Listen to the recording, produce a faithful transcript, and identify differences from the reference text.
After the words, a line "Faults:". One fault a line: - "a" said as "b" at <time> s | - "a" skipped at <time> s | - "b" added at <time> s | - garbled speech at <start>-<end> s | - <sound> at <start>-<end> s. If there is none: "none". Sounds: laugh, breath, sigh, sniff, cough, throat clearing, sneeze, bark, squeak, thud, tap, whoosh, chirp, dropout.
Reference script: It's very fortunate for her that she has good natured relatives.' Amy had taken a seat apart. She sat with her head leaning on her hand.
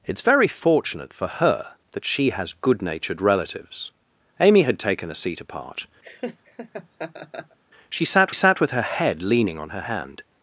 It's very fortunate for her that she has good natured relatives.' Amy had taken a seat apart. She sat sat with her head leaning on her hand.
Faults:
- laugh at 6.0-7.6 s
- "sat" added at 8.3 s